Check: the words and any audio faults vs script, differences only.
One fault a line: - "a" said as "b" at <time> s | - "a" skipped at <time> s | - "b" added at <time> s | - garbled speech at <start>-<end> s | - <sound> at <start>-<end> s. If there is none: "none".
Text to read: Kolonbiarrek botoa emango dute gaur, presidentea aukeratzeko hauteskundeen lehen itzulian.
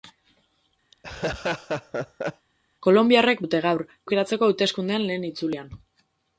- laugh at 0.9-2.5 s
- "botoa emango" skipped at 3.4 s
- "presidentea" skipped at 3.8 s